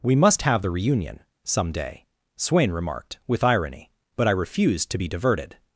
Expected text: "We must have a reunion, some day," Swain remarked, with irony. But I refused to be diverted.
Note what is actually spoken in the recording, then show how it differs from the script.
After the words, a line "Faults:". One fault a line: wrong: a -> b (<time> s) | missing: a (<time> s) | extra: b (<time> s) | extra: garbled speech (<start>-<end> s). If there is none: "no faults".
"We must have the reunion, some day," Swain remarked, with irony. But I refused to be diverted.
Faults:
wrong: a -> the (0.6 s)